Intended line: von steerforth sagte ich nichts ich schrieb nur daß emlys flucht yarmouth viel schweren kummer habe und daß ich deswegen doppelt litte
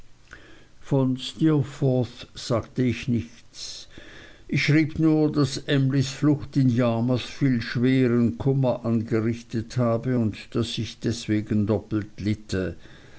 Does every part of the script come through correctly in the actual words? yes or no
no